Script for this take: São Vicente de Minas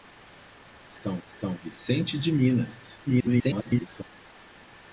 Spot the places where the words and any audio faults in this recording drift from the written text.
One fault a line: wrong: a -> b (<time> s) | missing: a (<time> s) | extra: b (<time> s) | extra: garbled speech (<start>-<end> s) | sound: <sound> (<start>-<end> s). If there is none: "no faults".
extra: são (1.3 s)
extra: garbled speech (3.1-4.0 s)